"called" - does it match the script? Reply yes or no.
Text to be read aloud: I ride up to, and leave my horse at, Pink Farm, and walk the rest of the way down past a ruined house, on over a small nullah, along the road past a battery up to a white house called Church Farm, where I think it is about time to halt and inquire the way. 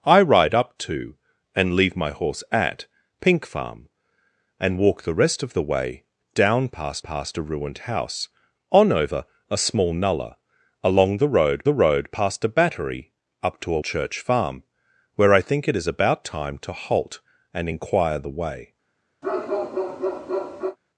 no